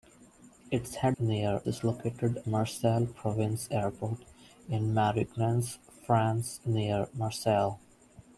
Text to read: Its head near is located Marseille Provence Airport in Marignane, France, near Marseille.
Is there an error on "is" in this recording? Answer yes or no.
no